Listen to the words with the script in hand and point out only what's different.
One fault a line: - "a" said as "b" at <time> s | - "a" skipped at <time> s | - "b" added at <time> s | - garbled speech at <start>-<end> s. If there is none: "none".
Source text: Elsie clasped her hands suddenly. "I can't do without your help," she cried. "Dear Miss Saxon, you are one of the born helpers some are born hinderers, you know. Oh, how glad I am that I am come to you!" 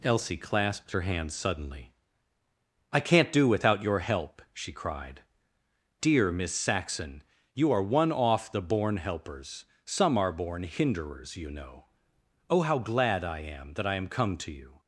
- "of" said as "off" at 8.1 s